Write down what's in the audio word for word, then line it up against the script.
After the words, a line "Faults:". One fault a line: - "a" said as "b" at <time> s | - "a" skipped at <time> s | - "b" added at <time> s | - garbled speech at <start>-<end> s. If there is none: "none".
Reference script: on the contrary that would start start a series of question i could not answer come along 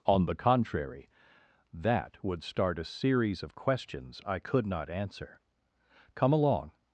on the contrary that would start a series of questions i could not answer come along
Faults:
- "start" skipped at 2.8 s
- "question" said as "questions" at 3.6 s